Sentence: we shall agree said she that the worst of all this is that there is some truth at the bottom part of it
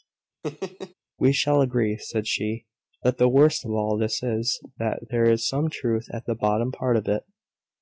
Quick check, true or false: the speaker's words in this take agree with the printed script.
true